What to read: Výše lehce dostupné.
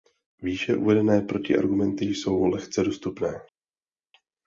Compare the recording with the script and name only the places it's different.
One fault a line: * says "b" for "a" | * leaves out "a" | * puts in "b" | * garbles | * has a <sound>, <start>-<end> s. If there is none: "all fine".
* puts in "uvedené protiargumenty jsou"